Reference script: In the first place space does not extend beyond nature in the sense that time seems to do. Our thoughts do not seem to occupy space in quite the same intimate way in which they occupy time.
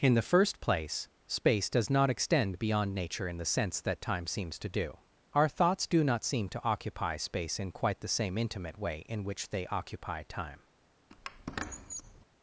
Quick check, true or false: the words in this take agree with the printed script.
true